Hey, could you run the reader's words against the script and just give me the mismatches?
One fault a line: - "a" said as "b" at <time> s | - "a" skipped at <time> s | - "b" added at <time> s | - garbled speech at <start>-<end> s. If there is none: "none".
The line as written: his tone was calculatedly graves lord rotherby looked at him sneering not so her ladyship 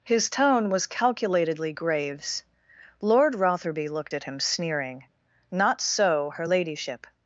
none